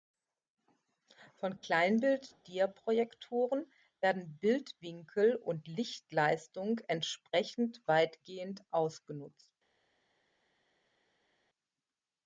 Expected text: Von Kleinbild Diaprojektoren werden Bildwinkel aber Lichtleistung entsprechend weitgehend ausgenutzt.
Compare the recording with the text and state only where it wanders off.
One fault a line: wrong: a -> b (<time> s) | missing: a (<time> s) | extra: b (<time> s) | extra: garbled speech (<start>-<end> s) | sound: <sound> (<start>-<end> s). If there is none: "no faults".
wrong: aber -> und (5.3 s)